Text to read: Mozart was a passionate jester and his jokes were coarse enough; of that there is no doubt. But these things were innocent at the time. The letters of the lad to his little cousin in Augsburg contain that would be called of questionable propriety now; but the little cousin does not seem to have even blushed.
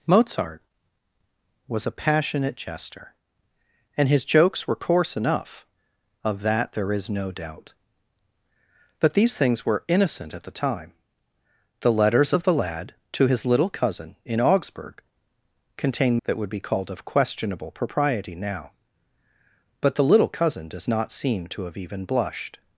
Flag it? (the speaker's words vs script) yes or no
no